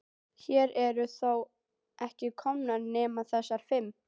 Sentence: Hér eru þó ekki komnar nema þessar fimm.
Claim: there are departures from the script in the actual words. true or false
false